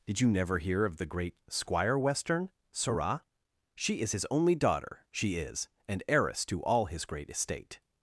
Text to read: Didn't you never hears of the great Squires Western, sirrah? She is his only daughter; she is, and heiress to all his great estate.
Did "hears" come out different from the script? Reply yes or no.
yes